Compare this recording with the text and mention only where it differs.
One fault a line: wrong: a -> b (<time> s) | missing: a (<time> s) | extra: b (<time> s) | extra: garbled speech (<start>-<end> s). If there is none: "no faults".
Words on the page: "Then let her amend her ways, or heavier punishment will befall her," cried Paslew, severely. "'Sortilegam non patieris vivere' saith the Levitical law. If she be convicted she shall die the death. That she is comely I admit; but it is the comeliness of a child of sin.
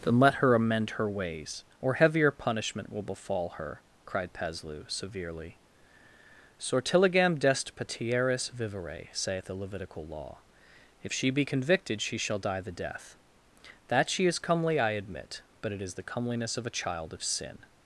wrong: non -> dest (7.4 s)